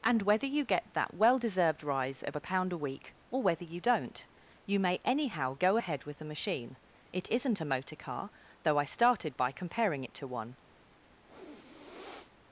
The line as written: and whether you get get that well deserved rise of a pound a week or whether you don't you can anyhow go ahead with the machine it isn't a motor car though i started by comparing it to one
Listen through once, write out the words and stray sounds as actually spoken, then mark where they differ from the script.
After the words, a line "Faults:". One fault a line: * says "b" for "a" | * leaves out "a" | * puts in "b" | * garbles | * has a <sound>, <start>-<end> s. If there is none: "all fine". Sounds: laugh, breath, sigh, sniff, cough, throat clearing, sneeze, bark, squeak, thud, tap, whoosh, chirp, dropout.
and whether you get that well deserved rise of a pound a week or whether you don't you may anyhow go ahead with the machine it isn't a motor car though i started by comparing it to one
Faults:
* leaves out "get"
* says "may" for "can"
* has a sniff, 11.3-12.3 s